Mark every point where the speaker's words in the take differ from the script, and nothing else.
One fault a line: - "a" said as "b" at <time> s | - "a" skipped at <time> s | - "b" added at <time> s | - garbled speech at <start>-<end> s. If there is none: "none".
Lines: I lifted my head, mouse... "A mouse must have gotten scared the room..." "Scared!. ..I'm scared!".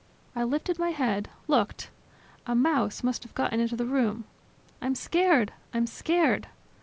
- "mouse" said as "looked" at 1.5 s
- "scared" said as "into" at 3.6 s
- "I'm" added at 4.8 s